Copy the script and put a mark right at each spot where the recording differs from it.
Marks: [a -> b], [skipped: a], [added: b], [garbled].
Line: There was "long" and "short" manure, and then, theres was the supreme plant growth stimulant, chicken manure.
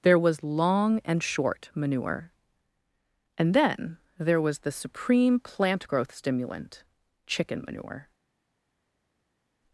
There was "long" and "short" manure, and then, [theres -> there] was the supreme plant growth stimulant, chicken manure.